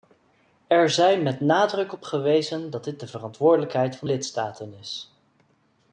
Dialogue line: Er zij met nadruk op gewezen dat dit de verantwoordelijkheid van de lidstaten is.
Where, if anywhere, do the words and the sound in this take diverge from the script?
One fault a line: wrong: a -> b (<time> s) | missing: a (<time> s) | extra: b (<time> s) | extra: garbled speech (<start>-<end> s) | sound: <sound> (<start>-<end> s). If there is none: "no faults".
missing: de (4.1 s)